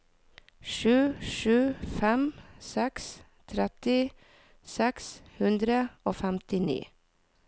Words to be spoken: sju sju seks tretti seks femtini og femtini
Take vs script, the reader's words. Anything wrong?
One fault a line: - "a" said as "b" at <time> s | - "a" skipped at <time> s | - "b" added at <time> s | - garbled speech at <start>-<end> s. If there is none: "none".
- "fem" added at 2.0 s
- "femtini" said as "hundre" at 5.4 s